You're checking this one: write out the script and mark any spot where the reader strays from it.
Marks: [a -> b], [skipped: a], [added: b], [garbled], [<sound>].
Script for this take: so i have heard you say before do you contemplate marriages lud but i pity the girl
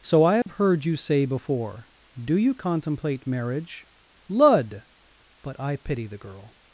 so i have [dropout] heard you say before do you contemplate [marriages -> marriage] lud but i pity the girl